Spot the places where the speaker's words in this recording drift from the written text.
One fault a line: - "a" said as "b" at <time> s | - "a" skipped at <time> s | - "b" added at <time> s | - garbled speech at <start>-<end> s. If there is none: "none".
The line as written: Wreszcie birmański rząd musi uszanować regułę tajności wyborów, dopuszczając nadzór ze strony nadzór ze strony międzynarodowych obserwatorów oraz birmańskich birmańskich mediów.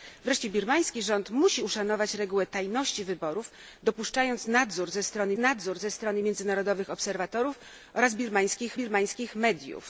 none